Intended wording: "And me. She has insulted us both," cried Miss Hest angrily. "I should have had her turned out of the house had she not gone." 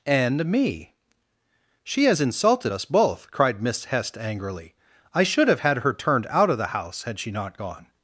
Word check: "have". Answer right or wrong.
right